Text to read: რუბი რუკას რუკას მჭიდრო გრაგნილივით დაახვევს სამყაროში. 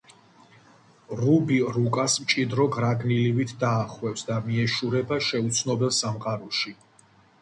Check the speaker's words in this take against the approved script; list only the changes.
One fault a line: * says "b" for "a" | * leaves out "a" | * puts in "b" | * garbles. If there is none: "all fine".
* leaves out "რუკას"
* puts in "და მიეშურება შეუცნობელ"